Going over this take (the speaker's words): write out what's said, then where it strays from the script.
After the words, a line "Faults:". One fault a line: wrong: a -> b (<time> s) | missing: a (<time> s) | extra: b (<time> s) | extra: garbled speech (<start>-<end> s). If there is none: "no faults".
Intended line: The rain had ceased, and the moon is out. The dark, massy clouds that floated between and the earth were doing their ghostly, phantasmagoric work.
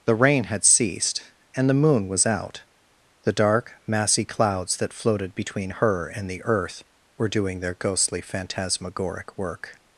The rain had ceased, and the moon was out. The dark, massy clouds that floated between her and the earth were doing their ghostly, phantasmagoric work.
Faults:
wrong: is -> was (2.1 s)
extra: her (5.7 s)